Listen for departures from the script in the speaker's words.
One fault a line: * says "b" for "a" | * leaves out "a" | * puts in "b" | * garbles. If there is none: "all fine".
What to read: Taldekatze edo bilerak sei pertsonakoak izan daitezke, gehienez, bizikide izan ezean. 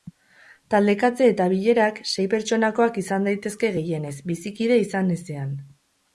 * says "eta" for "edo"